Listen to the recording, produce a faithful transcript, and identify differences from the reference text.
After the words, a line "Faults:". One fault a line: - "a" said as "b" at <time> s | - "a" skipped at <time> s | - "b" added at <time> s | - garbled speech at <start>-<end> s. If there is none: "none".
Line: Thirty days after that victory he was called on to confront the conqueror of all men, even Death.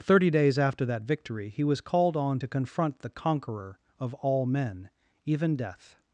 Thirty days after that victory he was called on to confront the conqueror of all men, even Death.
Faults:
none